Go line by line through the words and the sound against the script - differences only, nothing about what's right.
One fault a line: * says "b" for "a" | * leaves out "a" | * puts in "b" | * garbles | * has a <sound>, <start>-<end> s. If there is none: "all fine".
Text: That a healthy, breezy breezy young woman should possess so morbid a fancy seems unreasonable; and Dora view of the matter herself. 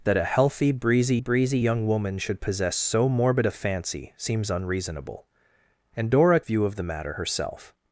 all fine